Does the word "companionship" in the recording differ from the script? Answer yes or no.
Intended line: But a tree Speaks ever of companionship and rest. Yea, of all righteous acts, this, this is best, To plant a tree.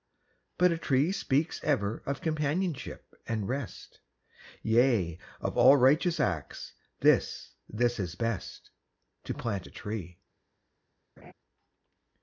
no